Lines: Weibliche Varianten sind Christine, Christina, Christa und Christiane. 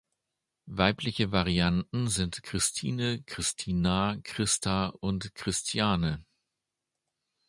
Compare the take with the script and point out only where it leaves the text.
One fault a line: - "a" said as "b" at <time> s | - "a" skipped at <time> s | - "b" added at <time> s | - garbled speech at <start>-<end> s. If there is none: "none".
none